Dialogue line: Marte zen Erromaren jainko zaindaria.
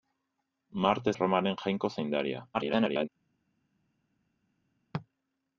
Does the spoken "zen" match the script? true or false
false